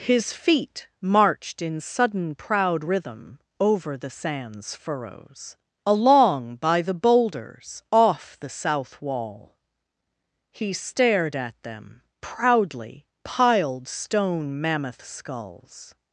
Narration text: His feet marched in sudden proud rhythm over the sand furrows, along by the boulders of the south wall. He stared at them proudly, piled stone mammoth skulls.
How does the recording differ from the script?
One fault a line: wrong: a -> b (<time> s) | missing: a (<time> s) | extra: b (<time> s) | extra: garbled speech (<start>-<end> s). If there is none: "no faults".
wrong: sand -> sands (4.1 s)
wrong: of -> off (7.9 s)